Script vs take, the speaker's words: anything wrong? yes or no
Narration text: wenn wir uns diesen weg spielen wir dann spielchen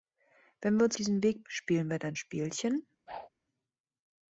no